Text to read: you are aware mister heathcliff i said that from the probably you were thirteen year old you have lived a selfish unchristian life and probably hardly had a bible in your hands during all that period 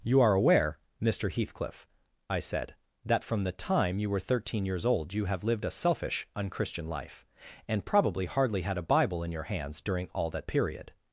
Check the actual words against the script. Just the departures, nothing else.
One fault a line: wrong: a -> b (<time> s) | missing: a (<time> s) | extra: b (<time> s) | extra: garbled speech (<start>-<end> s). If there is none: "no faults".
wrong: probably -> time (3.5 s)
wrong: year -> years (4.6 s)